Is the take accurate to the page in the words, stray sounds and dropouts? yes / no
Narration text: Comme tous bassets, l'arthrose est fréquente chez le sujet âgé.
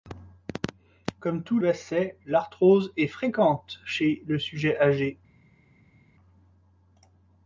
yes